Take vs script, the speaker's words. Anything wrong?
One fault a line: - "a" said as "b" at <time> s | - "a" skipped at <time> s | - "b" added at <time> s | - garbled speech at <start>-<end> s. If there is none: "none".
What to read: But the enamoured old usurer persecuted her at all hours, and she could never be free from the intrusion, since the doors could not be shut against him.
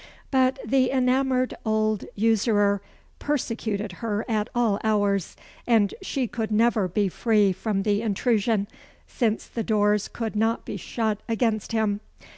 none